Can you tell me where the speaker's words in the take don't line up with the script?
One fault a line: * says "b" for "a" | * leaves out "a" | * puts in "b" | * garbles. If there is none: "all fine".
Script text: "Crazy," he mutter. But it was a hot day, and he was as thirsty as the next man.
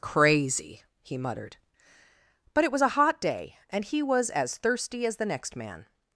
* says "muttered" for "mutter"